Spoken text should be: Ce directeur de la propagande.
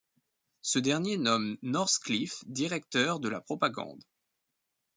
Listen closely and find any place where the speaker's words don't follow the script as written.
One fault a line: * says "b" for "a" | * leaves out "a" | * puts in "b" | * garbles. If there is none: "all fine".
* puts in "dernier nomme Northcliffe"